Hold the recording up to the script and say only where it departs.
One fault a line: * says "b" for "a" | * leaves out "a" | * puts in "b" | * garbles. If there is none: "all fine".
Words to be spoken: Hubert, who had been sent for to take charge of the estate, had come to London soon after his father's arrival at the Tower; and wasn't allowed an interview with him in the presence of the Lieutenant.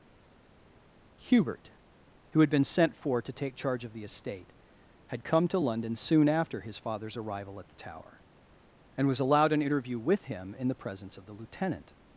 * says "was" for "wasn't"